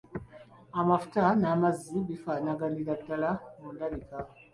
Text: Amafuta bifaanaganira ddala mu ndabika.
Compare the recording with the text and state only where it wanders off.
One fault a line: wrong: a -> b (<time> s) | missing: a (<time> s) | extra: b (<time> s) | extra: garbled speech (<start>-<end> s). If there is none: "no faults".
extra: n'amazzi (1.4 s)